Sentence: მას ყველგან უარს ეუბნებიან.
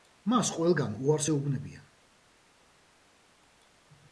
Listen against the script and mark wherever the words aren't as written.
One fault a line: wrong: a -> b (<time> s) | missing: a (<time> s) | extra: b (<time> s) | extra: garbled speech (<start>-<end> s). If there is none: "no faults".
no faults